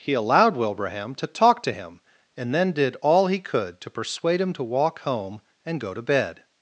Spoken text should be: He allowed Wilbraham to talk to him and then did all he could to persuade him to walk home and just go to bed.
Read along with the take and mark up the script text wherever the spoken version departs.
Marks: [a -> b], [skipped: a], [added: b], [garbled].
He allowed Wilbraham to talk to him and then did all he could to persuade him to walk home and [skipped: just] go to bed.